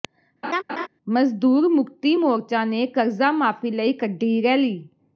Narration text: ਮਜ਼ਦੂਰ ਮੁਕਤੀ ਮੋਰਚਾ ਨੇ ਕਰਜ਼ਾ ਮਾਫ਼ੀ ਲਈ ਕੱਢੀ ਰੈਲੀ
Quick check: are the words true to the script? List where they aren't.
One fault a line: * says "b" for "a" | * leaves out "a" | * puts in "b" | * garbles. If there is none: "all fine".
all fine